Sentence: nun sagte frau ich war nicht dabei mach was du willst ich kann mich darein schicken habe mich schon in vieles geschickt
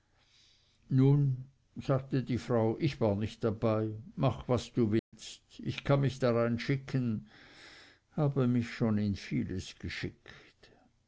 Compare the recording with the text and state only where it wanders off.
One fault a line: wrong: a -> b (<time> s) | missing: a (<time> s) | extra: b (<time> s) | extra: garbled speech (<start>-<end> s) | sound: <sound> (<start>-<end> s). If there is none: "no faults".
extra: die (2.2 s)
sound: dropout (5.0-5.1 s)